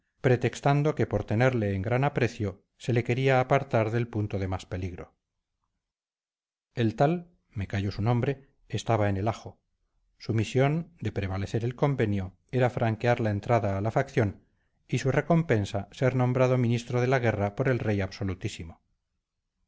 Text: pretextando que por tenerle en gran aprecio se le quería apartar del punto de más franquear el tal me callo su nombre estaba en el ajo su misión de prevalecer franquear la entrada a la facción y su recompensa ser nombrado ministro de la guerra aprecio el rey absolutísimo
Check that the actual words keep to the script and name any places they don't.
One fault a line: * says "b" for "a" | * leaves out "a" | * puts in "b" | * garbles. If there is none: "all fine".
* says "peligro" for "franquear"
* puts in "el convenio era"
* says "por" for "aprecio"